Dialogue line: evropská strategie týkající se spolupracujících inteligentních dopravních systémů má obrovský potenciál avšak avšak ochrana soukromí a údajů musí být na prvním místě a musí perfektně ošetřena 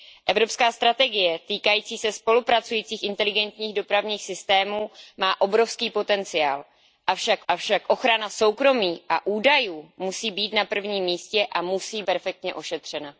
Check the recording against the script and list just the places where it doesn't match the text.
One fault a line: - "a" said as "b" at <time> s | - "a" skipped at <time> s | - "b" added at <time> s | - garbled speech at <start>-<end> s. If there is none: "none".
none